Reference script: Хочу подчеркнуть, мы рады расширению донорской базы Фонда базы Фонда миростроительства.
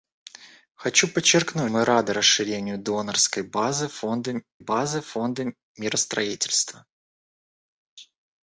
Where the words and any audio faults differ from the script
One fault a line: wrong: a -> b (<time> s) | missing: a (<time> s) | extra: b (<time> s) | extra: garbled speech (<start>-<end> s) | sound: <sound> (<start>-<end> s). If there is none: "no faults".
no faults